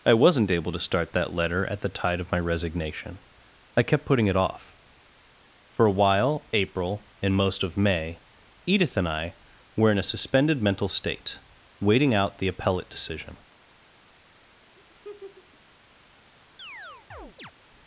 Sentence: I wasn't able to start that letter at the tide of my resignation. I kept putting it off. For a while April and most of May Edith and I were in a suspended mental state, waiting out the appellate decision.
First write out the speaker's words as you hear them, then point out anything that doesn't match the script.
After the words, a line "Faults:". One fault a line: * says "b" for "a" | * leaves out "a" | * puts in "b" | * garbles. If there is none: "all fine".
I wasn't able to start that letter at the tide of my resignation. I kept putting it off. For a while April and most of May Edith and I were in a suspended mental state, waiting out the appellate decision.
Faults:
all fine